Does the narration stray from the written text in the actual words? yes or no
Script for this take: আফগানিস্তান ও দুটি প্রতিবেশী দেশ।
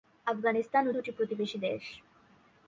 no